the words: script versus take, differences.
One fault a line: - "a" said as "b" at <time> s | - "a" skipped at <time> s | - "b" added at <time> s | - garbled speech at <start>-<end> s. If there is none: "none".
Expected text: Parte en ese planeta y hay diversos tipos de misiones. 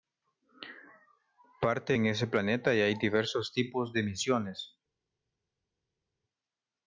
none